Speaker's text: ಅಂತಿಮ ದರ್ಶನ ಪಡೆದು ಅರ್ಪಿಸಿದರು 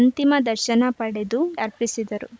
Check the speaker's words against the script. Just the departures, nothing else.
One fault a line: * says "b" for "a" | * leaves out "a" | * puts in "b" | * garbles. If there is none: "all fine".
all fine